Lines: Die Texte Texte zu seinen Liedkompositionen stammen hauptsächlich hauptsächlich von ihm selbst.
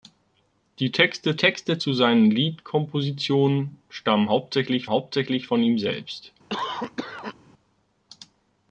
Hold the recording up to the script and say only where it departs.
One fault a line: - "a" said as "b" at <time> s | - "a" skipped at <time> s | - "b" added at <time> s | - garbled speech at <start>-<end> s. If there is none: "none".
none